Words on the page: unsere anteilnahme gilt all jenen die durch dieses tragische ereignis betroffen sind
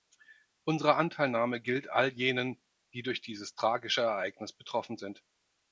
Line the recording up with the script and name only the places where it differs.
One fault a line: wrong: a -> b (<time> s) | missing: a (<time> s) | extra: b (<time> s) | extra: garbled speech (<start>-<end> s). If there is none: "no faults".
no faults